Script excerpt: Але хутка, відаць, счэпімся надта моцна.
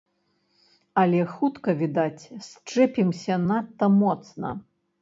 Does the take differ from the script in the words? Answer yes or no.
no